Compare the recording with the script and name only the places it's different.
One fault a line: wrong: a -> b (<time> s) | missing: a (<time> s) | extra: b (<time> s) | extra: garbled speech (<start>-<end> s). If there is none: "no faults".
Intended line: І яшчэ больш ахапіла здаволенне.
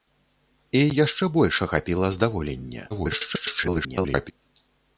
extra: garbled speech (2.9-4.3 s)